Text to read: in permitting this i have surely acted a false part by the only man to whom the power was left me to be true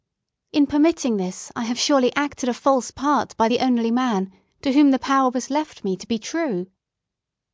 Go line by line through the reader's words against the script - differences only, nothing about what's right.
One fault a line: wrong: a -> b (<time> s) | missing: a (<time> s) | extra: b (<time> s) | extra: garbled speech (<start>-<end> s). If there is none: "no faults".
no faults